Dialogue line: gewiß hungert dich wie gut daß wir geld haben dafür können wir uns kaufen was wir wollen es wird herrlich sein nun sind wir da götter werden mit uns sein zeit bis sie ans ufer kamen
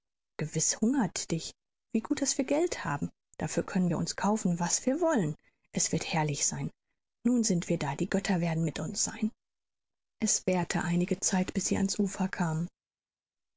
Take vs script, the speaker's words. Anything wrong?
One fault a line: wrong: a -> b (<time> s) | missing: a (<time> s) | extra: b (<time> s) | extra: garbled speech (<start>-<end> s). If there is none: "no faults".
extra: die (8.0 s)
extra: es währte einige (10.2 s)